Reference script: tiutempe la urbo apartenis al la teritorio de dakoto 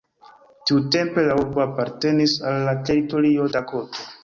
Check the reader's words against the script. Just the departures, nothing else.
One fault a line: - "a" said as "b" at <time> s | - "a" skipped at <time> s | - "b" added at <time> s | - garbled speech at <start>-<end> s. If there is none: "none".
- "de" skipped at 3.5 s